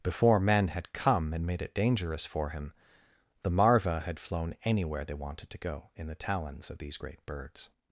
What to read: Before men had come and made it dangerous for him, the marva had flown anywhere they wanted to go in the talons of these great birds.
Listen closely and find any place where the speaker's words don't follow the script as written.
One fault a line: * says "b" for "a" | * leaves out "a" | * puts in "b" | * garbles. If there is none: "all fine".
all fine